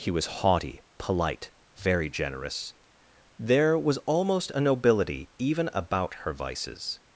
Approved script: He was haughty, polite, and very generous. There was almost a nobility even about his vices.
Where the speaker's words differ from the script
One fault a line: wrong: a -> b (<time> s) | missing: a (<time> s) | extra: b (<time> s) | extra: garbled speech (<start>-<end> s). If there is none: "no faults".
missing: and (1.5 s)
wrong: his -> her (6.2 s)